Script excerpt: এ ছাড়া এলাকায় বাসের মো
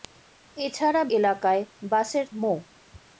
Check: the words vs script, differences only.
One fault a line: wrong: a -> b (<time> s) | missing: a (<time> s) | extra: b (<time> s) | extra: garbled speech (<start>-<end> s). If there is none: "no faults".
no faults